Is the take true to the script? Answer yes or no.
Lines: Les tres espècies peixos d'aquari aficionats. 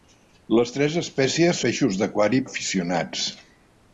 yes